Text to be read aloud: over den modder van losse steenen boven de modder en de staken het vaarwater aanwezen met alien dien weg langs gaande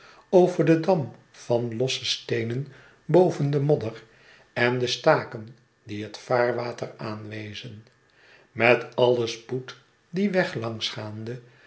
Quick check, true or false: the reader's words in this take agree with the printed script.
false